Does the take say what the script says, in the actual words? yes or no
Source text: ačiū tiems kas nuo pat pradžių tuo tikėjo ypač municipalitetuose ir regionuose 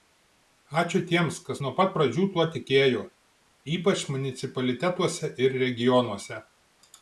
yes